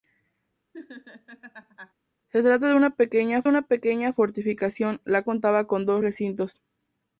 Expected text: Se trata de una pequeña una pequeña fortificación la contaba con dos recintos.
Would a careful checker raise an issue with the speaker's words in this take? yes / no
no